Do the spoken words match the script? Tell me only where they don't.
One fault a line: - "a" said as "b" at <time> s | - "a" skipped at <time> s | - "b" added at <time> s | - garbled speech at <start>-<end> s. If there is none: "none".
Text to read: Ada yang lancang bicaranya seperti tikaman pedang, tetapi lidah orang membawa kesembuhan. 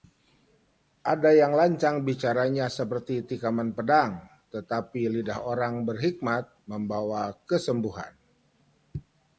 - "berhikmat" added at 5.8 s